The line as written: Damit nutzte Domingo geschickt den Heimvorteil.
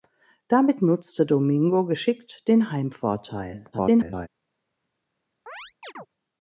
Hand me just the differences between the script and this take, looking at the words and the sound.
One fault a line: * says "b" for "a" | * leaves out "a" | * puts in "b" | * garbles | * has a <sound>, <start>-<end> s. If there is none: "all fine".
* garbles
* has a chirp, 5.5-6.1 s